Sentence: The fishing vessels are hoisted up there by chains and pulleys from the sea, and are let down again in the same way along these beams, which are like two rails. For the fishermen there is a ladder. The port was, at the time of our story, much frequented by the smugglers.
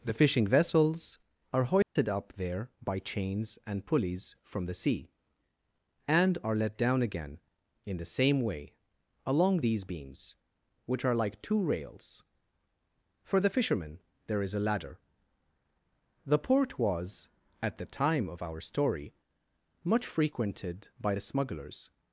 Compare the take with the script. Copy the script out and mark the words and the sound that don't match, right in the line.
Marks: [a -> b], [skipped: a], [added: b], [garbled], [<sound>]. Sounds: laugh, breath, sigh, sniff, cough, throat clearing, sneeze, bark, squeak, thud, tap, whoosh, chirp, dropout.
The fishing vessels are hoisted [dropout] up there by chains and pulleys from the sea, and are let down again in the same way along these beams, which are like two rails. For the fishermen there is a ladder. The port was, at the time of our story, much frequented by the smugglers.